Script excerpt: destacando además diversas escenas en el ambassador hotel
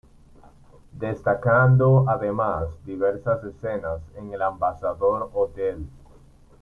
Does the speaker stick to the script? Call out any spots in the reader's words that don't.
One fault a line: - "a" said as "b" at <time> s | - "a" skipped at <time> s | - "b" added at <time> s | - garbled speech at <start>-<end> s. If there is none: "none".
none